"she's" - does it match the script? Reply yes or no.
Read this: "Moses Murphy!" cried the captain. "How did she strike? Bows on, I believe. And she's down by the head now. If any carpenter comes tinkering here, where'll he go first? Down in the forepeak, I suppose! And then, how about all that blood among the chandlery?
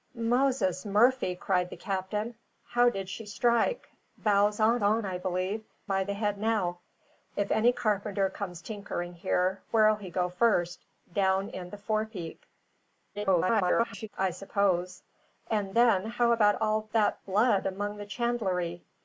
no